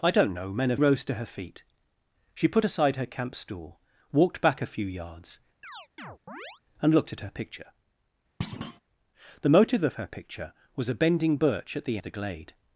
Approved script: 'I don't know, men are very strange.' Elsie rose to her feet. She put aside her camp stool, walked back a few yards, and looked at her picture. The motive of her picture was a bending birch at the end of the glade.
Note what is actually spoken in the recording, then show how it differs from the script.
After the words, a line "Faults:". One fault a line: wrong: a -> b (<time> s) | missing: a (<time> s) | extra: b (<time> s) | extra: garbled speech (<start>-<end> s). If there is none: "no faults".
'I don't know, men are rose to her feet. She put aside her camp stool, walked back a few yards, and looked at her picture. The motive of her picture was a bending birch at the of the glade.
Faults:
missing: very strange Elsie (0.8 s)
missing: end (12.0 s)